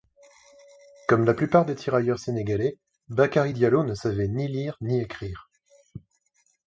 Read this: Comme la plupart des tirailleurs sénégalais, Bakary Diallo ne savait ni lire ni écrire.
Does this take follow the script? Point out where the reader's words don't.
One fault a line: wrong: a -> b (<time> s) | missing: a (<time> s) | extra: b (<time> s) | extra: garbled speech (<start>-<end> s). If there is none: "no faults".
no faults